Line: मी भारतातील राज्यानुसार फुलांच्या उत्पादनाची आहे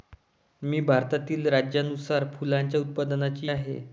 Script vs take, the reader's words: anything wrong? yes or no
no